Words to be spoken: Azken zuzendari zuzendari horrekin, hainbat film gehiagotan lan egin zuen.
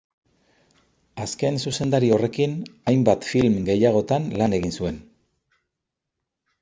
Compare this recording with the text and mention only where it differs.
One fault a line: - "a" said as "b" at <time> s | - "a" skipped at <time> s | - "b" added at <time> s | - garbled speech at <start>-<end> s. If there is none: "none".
- "zuzendari" skipped at 2.1 s